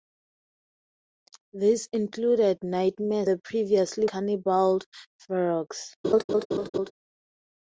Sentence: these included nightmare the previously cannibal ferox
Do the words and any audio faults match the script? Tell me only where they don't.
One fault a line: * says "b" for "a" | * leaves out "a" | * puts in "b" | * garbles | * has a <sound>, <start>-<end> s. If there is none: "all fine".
* has a laugh, 6.0-6.9 s